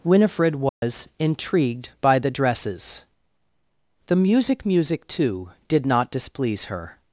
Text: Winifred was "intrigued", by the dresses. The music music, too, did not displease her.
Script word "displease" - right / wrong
right